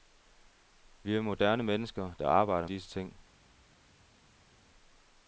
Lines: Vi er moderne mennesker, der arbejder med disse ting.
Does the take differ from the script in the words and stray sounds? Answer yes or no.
yes